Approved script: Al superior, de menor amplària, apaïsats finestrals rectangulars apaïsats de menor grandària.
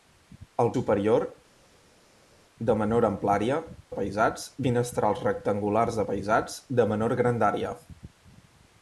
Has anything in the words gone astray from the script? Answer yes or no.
no